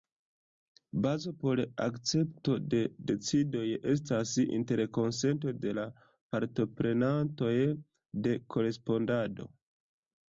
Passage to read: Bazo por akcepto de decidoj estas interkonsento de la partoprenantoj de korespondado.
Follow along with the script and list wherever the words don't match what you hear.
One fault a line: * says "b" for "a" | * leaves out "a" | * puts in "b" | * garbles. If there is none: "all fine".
all fine